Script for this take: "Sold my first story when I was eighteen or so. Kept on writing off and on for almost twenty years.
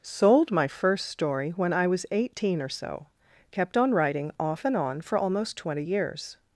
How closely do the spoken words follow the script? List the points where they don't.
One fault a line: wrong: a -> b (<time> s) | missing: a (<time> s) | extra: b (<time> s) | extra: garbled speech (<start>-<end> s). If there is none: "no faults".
no faults